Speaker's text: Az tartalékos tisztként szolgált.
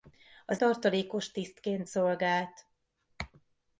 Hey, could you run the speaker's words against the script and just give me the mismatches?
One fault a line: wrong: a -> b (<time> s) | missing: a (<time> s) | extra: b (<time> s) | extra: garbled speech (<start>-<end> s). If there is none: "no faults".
no faults